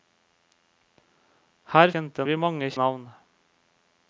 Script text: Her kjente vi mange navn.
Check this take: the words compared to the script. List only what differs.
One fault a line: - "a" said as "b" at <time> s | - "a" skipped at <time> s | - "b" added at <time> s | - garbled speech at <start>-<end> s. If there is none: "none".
none